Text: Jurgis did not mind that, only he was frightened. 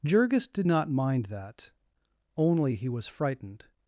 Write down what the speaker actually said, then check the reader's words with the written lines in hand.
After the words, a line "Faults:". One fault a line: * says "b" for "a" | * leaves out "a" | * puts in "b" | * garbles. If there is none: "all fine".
Jurgis did not mind that, only he was frightened.
Faults:
all fine